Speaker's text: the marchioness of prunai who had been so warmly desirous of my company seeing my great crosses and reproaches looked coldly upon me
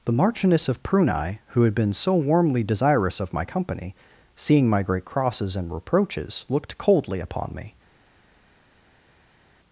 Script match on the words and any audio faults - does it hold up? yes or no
yes